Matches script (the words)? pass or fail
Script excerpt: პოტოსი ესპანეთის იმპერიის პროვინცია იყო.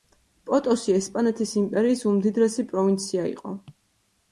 fail